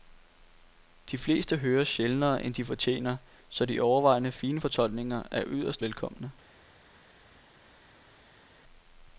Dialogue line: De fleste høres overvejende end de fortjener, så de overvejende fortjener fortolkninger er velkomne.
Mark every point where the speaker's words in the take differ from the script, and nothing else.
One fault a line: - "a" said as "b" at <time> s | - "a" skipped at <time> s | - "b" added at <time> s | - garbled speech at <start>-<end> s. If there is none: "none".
- "overvejende" said as "sjældnere" at 1.9 s
- "fortjener" said as "fine" at 4.3 s
- "yderst" added at 5.5 s